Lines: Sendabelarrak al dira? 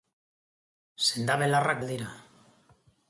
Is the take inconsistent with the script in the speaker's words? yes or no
no